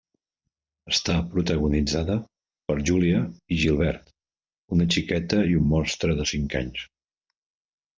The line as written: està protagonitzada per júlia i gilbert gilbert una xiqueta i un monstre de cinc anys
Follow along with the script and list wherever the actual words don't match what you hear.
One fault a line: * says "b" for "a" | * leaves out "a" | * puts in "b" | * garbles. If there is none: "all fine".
* leaves out "gilbert"